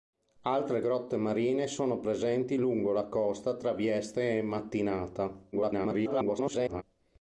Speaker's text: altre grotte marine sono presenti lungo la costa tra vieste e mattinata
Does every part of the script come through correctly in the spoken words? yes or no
no